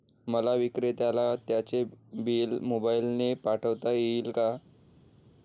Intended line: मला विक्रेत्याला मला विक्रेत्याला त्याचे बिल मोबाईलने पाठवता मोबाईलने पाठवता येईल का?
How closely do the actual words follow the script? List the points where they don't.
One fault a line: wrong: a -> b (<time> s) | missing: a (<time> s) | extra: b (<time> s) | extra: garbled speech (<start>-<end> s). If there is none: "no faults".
missing: मला विक्रेत्याला (1.3 s)
missing: मोबाईलने पाठवता (3.9 s)